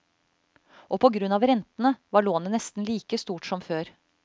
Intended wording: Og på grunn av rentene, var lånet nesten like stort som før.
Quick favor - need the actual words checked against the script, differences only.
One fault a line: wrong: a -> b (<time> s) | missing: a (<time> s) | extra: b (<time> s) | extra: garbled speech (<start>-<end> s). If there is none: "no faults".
no faults